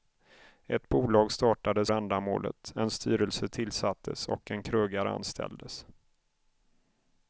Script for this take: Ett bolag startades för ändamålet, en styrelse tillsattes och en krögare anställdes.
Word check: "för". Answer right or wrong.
wrong